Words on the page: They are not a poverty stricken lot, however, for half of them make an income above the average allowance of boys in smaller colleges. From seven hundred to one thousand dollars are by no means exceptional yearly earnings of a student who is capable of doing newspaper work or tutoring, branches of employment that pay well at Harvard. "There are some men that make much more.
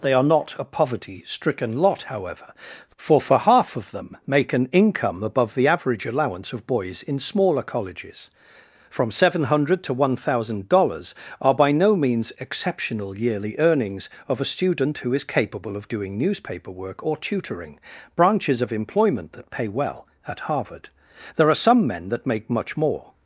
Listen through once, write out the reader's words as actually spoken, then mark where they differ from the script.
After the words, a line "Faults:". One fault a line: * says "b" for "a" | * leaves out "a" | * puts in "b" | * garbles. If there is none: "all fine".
They are not a poverty stricken lot, however, for for half of them make an income above the average allowance of boys in smaller colleges. From seven hundred to one thousand dollars are by no means exceptional yearly earnings of a student who is capable of doing newspaper work or tutoring, branches of employment that pay well at Harvard. "There are some men that make much more.
Faults:
* puts in "for"